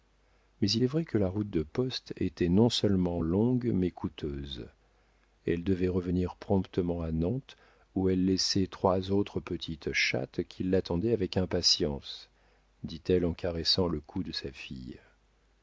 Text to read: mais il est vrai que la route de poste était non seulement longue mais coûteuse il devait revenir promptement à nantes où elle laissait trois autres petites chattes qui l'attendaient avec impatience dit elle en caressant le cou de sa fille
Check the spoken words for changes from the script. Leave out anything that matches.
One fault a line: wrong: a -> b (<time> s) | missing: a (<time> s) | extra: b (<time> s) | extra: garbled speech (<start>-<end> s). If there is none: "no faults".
wrong: il -> elle (5.5 s)